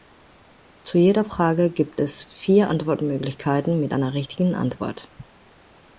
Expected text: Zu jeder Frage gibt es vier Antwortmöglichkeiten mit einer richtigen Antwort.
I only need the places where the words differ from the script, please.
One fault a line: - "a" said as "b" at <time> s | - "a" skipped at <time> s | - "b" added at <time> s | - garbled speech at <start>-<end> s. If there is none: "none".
none